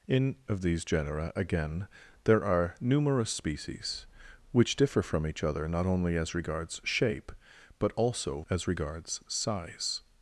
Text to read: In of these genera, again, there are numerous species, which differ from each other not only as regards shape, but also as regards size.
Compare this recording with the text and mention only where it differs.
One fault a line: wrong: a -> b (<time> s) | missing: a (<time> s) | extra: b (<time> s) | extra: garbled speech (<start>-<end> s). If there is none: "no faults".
no faults